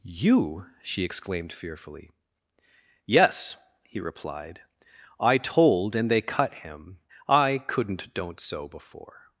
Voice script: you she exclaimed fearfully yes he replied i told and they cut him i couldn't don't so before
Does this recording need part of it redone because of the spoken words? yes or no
no